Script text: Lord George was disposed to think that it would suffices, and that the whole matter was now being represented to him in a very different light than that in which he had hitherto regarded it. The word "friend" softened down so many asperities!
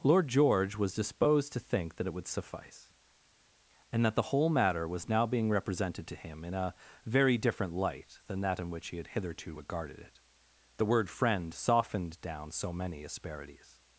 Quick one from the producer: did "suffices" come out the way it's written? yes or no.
no